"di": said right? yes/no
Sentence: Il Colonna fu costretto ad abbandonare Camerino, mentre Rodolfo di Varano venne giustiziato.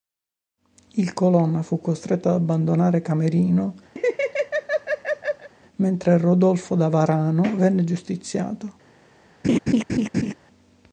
no